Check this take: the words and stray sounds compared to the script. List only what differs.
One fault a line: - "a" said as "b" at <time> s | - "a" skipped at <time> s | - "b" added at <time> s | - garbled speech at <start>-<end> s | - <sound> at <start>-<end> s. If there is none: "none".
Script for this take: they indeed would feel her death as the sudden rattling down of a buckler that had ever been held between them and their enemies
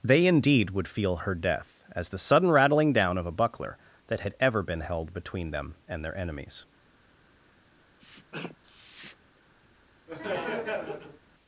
- sniff at 8.0-9.2 s
- laugh at 10.1-11.2 s